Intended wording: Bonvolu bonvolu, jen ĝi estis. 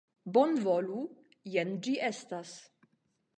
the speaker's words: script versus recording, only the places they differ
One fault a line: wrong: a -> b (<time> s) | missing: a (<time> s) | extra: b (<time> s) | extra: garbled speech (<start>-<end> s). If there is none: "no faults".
missing: bonvolu (1.0 s)
wrong: estis -> estas (2.1 s)